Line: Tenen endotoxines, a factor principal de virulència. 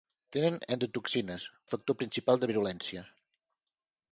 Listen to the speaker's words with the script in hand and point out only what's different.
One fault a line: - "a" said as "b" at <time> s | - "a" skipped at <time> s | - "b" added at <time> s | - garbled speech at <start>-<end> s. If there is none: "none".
none